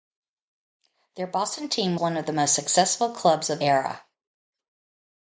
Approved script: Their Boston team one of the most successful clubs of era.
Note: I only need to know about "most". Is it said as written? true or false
true